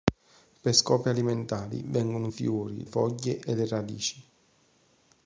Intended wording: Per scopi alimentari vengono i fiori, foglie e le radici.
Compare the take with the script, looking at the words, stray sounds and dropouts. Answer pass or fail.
pass